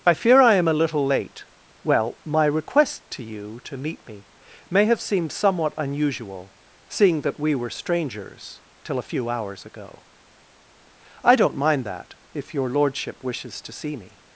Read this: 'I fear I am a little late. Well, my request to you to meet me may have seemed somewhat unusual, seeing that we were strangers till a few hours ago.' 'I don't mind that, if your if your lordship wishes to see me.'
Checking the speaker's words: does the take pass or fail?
fail